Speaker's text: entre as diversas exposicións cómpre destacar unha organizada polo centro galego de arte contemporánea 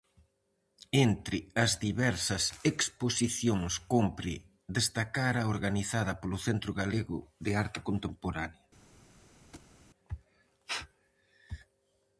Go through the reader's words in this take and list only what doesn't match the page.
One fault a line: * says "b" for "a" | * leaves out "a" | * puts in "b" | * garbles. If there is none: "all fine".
* says "a" for "unha"